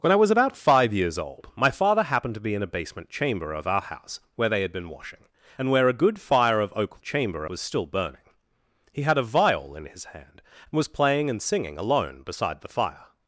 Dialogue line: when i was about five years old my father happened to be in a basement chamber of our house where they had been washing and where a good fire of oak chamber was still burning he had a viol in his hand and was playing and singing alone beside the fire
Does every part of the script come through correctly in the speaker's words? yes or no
yes